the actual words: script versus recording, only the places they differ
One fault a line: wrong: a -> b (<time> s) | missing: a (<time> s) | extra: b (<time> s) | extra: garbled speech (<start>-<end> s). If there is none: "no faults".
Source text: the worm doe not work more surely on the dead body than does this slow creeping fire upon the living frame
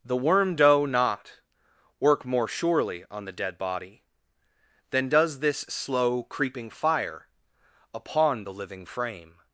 no faults